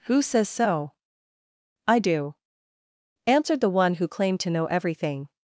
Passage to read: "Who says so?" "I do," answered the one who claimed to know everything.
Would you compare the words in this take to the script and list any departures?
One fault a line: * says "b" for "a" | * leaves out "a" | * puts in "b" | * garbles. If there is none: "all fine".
all fine